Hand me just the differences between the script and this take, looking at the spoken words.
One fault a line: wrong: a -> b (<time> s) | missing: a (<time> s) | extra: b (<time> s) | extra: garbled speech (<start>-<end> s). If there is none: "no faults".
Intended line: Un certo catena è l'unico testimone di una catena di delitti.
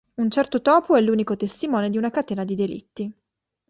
wrong: catena -> topo (0.6 s)